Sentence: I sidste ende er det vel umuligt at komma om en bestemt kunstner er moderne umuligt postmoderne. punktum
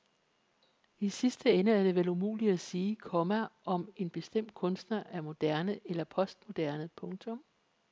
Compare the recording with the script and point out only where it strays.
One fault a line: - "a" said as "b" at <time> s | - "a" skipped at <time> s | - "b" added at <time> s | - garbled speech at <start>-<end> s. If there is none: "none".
- "sige" added at 2.6 s
- "umuligt" said as "eller" at 5.8 s